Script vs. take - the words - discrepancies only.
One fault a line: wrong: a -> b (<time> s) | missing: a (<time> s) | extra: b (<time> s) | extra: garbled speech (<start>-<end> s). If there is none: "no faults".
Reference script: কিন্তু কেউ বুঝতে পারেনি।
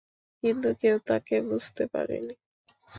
extra: তাকে (1.1 s)